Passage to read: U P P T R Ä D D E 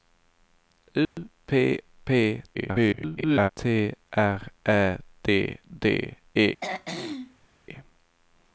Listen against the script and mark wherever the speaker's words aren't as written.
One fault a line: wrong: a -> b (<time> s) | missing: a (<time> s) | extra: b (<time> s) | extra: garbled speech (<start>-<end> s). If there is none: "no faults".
extra: garbled speech (2.5-3.5 s)